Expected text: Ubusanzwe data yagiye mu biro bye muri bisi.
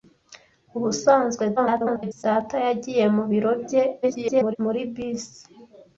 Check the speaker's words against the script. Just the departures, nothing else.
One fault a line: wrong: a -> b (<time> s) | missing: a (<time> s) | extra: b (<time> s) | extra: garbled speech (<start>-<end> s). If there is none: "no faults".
extra: garbled speech (1.6-2.2 s)
extra: garbled speech (4.0-4.6 s)